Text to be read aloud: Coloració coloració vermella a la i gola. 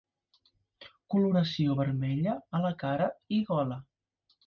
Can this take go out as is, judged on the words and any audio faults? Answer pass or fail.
fail